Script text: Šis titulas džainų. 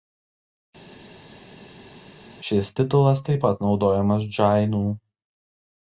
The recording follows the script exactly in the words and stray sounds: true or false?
false